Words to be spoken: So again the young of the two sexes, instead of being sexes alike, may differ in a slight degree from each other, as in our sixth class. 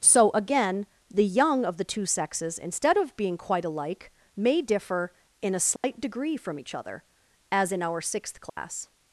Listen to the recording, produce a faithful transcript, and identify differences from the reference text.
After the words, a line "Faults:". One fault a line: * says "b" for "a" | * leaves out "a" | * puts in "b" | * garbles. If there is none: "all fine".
So again the young of the two sexes, instead of being quite alike, may differ in a slight degree from each other, as in our sixth class.
Faults:
* says "quite" for "sexes"